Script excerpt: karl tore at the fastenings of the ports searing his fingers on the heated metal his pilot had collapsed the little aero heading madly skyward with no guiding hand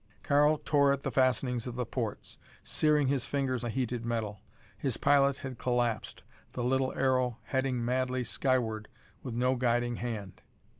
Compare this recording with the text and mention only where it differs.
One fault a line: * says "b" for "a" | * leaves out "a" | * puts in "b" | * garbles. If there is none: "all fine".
* leaves out "on"